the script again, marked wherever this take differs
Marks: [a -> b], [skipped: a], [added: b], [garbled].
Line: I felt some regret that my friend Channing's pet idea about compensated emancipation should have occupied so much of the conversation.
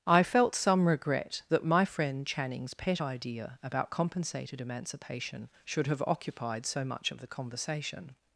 I felt some regret that my friend Channing's pet idea about compensated emancipation should have occupied so much of the conversation.